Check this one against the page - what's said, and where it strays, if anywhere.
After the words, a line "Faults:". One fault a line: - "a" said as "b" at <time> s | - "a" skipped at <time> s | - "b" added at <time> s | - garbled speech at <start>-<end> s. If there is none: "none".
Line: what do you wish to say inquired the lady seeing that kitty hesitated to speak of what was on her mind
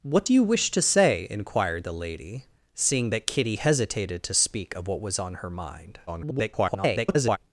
what do you wish to say inquired the lady seeing that kitty hesitated to speak of what was on her mind [garbled]
Faults:
- garbled speech at 6.1-7.4 s